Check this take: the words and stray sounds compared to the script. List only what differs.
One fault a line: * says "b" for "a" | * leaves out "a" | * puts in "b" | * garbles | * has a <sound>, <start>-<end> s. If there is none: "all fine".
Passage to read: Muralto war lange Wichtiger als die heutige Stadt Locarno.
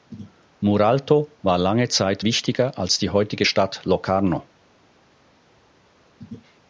* puts in "Zeit"